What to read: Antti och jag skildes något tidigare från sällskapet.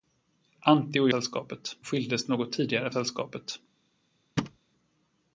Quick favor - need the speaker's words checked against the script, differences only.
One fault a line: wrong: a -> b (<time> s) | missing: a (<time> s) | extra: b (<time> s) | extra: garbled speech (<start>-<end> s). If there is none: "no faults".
wrong: jag -> sällskapet (1.0 s)
missing: från (2.9 s)